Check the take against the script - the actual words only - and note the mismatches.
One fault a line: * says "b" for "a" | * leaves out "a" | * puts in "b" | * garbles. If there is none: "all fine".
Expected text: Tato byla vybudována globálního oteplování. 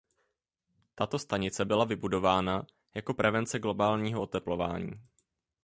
* puts in "stanice"
* puts in "jako prevence"